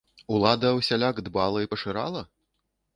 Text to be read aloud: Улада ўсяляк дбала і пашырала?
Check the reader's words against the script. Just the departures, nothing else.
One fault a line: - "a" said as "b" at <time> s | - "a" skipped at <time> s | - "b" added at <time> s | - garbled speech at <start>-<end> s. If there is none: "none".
none